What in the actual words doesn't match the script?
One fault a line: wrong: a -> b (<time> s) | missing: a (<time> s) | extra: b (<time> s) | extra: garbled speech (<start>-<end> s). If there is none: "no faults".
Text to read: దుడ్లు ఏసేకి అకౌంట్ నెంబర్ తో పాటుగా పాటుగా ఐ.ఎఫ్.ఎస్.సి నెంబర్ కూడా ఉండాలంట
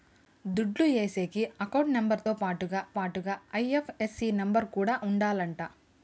no faults